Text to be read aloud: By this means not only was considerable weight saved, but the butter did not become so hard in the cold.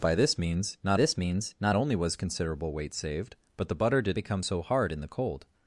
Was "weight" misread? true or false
false